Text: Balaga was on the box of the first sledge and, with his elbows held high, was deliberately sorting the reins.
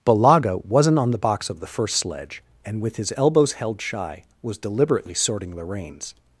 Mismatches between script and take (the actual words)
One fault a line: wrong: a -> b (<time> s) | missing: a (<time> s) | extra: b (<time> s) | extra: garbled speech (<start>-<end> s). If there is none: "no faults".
wrong: was -> wasn't (0.7 s)
wrong: high -> shy (3.8 s)